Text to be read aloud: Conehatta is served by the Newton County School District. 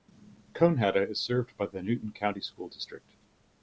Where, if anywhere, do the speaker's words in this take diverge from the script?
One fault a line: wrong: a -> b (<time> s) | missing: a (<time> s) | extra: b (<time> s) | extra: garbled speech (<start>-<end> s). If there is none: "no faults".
no faults